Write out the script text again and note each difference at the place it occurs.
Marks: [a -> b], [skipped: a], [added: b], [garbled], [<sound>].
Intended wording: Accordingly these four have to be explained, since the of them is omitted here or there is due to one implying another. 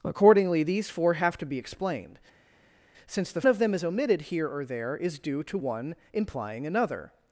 Accordingly these four have to be explained, since the of them is omitted here or there is due to one implying another.